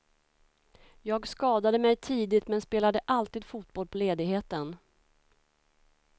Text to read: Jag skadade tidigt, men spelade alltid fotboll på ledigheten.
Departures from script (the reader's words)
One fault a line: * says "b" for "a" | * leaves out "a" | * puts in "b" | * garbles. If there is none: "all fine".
* puts in "mig"